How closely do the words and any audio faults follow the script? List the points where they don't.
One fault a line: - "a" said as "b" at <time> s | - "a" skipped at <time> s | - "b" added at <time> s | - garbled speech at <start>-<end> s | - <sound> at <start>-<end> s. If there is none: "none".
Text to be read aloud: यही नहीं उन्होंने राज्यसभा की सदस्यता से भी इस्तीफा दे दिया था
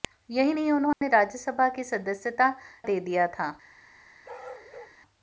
- dropout at 0.9-1.0 s
- "से भी इस्तीफा" skipped at 2.5 s
- bark at 4.2-5.0 s